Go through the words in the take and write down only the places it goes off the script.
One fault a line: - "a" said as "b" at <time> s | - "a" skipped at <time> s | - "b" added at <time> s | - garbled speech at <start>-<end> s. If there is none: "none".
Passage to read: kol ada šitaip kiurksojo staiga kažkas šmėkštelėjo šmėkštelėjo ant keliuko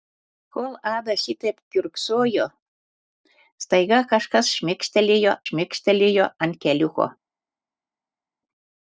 none